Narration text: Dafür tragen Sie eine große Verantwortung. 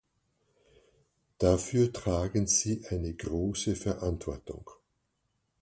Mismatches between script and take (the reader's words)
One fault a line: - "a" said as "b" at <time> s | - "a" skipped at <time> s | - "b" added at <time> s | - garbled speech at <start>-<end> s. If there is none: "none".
none